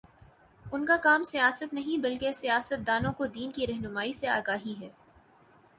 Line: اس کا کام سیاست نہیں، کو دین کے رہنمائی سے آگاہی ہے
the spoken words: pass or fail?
fail